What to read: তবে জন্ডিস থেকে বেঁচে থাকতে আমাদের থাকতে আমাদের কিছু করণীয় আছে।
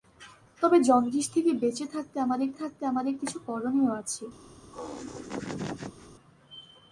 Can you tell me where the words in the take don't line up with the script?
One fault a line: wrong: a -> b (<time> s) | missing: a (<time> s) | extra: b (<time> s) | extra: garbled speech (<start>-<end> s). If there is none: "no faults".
no faults